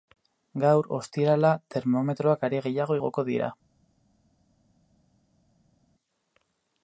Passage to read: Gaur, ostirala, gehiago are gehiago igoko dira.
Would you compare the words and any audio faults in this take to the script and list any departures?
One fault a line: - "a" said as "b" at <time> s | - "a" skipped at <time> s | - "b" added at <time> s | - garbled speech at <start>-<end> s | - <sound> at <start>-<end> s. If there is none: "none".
- "gehiago" said as "termometroak" at 1.8 s